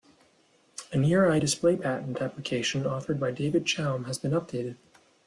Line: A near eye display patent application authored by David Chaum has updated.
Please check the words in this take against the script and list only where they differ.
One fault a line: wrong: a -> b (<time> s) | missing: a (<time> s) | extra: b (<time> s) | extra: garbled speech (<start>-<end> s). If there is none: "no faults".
extra: been (4.2 s)